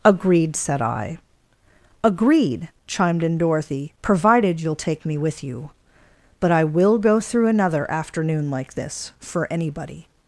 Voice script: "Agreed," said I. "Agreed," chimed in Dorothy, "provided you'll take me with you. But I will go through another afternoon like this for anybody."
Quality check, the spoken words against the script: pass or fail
pass